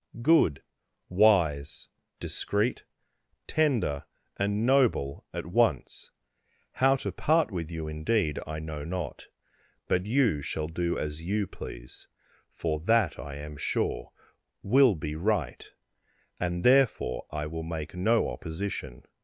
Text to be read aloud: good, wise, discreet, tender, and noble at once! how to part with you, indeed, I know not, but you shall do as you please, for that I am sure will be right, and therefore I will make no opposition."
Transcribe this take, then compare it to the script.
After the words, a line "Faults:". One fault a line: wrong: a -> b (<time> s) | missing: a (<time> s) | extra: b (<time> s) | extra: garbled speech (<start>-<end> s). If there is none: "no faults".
good, wise, discreet, tender, and noble at once! how to part with you, indeed, I know not, but you shall do as you please, for that I am sure will be right, and therefore I will make no opposition."
Faults:
no faults